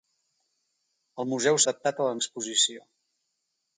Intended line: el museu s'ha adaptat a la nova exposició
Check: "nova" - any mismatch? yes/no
yes